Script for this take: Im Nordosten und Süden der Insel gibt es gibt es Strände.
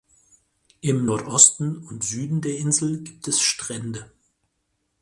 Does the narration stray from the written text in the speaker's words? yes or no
yes